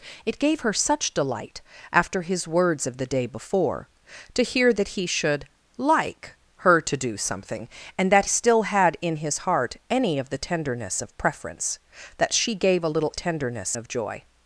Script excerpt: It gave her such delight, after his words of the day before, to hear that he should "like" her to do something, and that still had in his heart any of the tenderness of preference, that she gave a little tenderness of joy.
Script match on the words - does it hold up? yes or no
yes